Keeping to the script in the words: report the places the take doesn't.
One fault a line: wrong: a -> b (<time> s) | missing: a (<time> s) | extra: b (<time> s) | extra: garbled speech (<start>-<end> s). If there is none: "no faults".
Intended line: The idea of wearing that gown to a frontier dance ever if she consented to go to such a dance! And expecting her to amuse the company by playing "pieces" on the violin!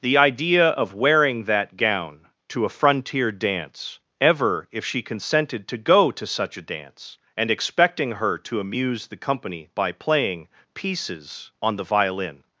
no faults